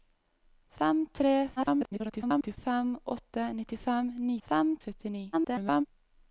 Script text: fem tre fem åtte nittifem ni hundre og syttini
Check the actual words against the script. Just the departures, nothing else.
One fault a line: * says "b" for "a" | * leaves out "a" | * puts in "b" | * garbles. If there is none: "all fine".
* garbles
* says "fem" for "hundre"
* garbles